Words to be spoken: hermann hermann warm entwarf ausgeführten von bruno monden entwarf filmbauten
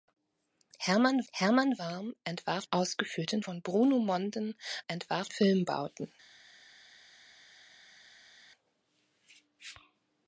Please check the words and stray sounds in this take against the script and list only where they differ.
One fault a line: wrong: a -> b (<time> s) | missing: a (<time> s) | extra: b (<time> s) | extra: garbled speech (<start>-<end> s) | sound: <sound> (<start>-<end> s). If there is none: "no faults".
no faults